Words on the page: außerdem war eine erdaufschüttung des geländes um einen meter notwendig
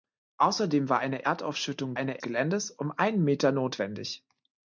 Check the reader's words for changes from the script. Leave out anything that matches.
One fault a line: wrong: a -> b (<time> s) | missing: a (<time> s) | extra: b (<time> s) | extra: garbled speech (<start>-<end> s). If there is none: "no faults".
wrong: des -> eine (1.9 s)